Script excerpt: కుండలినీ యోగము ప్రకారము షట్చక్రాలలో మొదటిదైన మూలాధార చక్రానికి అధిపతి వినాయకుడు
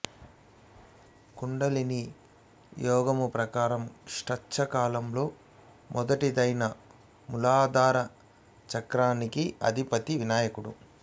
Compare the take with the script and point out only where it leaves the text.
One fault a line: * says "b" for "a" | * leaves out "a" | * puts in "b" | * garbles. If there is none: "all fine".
all fine